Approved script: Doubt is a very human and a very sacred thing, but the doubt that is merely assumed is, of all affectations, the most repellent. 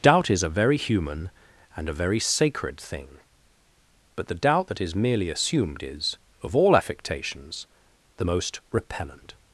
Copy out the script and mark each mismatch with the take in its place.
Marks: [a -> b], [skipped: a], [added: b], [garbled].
Doubt is a very human and a very sacred thing, but the doubt that is merely assumed is, of all affectations, the most repellent.